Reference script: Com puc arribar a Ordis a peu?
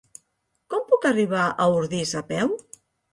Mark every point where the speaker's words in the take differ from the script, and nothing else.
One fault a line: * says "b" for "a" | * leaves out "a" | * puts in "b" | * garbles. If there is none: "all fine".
all fine